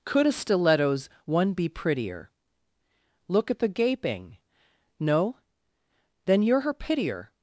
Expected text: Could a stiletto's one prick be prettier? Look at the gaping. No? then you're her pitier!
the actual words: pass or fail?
fail